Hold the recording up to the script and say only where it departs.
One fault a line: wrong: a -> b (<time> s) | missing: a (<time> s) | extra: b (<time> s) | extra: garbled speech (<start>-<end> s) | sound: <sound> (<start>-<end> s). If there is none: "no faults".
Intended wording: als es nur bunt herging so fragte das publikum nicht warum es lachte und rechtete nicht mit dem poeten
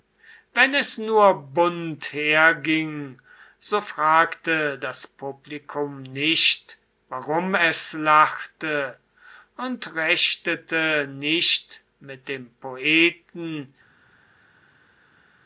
wrong: als -> wenn (0.6 s)